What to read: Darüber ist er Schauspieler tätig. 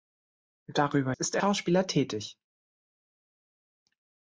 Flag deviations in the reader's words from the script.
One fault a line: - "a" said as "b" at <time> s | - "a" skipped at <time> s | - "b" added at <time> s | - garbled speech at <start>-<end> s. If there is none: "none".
none